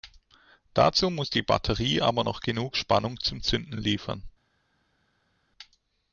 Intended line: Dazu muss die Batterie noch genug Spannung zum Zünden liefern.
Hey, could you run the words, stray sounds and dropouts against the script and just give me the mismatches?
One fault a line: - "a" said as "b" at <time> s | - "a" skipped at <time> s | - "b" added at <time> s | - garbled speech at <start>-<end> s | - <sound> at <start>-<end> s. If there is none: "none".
- "aber" added at 2.0 s